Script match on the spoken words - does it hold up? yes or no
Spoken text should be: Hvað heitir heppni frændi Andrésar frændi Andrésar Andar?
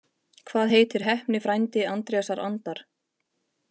no